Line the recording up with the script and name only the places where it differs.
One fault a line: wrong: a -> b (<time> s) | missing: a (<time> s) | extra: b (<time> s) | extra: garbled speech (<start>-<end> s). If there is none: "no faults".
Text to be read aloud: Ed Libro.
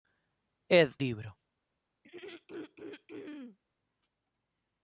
no faults